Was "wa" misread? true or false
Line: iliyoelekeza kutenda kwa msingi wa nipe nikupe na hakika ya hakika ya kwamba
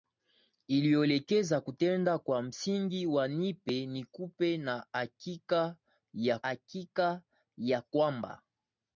false